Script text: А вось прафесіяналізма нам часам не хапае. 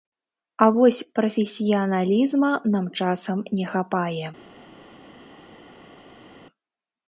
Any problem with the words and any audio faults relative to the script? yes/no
no